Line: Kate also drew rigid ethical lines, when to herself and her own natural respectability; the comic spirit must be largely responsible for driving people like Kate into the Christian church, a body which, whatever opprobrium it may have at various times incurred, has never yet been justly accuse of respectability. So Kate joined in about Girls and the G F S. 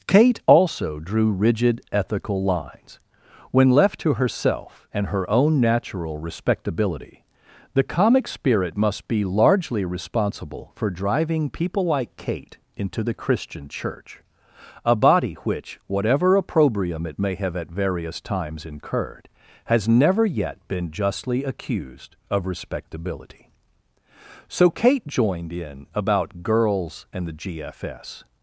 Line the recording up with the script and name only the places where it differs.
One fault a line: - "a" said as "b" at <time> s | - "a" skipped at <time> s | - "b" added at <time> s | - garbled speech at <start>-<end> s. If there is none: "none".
- "left" added at 3.7 s
- "accuse" said as "accused" at 21.4 s